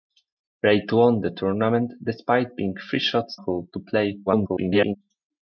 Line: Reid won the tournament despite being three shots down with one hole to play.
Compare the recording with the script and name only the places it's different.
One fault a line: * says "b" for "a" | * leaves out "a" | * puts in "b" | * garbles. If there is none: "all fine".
* leaves out "down with one"
* garbles